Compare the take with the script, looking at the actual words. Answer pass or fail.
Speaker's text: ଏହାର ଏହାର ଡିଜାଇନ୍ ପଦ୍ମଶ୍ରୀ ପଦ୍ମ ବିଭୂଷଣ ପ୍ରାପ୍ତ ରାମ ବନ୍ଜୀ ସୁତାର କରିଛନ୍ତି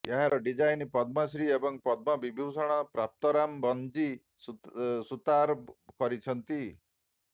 fail